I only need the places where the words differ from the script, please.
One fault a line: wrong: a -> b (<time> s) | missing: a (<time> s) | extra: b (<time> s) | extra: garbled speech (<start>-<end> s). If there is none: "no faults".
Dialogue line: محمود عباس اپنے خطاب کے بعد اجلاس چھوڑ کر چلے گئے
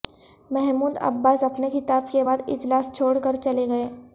no faults